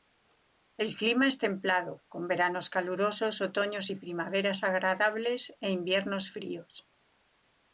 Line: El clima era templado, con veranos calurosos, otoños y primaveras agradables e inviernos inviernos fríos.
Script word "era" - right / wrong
wrong